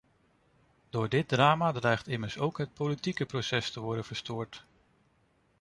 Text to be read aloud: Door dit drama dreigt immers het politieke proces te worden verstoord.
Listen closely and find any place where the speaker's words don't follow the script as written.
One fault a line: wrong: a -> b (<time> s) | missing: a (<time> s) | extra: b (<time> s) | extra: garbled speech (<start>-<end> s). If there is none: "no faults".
extra: ook (2.4 s)